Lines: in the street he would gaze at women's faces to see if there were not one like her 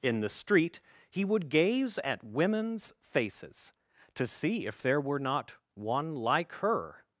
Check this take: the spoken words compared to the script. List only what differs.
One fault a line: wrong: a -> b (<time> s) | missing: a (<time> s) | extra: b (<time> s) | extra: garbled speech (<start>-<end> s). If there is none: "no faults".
no faults